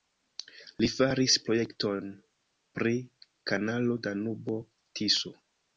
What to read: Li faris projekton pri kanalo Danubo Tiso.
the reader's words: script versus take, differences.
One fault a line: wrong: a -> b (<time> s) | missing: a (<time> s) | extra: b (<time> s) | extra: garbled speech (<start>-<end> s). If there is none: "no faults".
no faults